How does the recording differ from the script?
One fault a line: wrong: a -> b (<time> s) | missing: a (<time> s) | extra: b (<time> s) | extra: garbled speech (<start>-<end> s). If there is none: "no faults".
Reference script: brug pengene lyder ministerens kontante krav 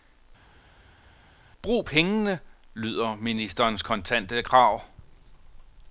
no faults